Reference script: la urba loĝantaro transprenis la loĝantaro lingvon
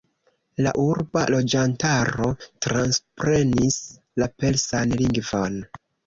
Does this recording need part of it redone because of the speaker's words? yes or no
yes